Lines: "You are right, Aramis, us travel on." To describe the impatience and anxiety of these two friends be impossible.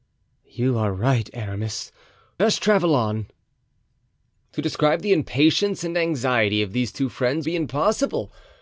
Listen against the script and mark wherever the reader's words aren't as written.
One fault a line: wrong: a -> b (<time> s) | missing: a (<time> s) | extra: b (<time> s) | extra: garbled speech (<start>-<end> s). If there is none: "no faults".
no faults